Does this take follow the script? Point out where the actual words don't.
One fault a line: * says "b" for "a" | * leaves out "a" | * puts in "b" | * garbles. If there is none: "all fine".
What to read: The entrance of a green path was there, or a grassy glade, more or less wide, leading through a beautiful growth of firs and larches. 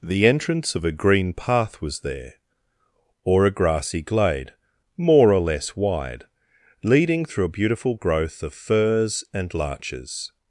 all fine